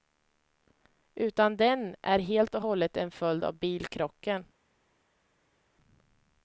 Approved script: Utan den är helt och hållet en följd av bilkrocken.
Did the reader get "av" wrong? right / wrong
right